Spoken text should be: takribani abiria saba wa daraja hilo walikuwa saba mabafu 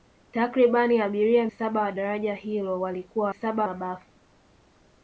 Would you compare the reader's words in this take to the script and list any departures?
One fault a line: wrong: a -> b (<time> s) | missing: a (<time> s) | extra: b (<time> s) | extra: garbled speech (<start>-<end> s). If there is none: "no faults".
no faults